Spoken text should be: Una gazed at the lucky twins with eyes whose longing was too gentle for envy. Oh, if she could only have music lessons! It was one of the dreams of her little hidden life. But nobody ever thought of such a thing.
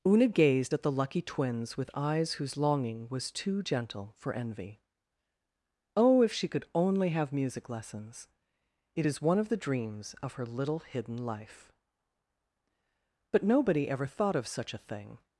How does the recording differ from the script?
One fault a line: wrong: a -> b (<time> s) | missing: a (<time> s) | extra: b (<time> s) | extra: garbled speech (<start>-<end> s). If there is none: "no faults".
wrong: was -> is (9.1 s)